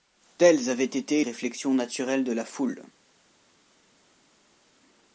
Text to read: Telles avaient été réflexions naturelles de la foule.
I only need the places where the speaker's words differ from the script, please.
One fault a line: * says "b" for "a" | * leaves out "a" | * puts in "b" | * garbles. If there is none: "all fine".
all fine